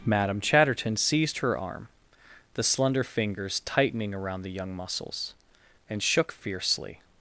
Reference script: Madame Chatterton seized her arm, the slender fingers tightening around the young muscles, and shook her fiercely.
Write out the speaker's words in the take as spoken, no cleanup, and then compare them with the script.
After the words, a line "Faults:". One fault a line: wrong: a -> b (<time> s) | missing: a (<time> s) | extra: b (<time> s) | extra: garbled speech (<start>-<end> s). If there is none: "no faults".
Madame Chatterton seized her arm, the slender fingers tightening around the young muscles, and shook fiercely.
Faults:
missing: her (6.3 s)